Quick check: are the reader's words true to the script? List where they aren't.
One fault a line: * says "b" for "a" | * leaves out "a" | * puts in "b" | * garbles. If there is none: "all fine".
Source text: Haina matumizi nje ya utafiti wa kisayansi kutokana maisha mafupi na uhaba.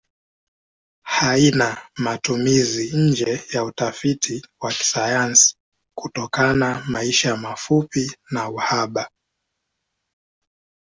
all fine